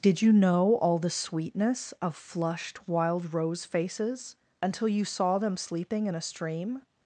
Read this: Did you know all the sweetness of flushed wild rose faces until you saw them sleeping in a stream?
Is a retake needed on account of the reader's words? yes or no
no